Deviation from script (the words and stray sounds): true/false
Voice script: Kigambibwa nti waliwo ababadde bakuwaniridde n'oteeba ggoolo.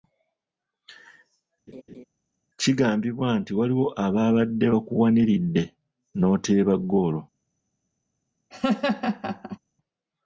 true